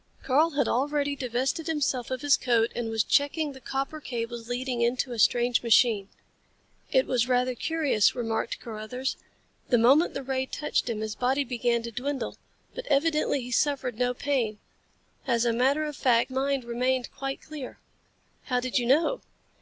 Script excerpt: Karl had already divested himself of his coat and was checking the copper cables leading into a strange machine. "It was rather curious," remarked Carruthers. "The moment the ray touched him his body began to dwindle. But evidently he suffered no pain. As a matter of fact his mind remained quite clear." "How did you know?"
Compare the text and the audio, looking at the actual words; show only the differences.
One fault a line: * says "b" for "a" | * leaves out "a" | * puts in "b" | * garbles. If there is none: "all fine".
* leaves out "his"